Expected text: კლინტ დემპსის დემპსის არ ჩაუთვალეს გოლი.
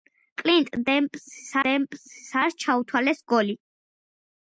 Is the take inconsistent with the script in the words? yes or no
no